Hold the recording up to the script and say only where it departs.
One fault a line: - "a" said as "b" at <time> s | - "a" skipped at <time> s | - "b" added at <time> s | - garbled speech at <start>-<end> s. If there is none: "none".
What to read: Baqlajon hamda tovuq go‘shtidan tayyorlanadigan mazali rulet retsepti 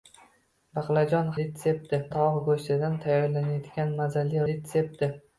- "hamda" said as "retsepti" at 1.4 s
- "rulet" skipped at 4.5 s